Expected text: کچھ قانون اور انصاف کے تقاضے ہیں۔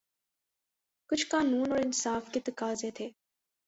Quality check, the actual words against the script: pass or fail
fail